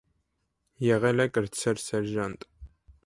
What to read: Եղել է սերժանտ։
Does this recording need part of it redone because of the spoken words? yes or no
yes